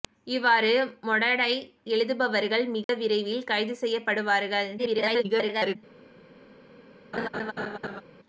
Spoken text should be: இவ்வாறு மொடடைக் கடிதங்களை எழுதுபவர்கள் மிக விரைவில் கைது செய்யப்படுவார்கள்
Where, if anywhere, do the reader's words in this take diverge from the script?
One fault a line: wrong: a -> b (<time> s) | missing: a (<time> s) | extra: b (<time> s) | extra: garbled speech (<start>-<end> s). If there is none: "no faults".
missing: கடிதங்களை (1.7 s)
extra: garbled speech (4.8-5.8 s)